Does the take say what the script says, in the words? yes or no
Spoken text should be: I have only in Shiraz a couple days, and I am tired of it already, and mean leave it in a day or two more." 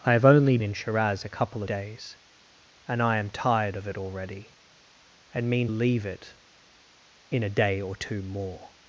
yes